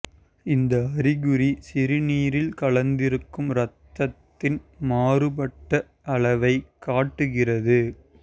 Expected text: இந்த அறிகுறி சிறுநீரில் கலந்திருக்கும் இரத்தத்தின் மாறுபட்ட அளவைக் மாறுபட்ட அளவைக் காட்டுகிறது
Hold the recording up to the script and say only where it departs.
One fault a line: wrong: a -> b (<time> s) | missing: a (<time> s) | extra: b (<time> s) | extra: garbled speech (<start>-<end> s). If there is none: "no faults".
missing: மாறுபட்ட அளவைக் (6.7 s)